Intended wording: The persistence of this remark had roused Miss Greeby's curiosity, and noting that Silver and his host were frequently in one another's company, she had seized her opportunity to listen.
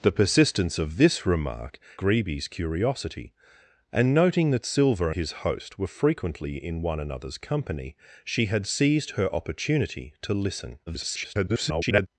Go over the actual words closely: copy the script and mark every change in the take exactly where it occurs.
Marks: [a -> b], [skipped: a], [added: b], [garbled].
The persistence of this remark [skipped: had roused Miss] Greeby's curiosity, and noting that Silver [skipped: and] his host were frequently in one another's company, she had seized her opportunity to listen. [garbled]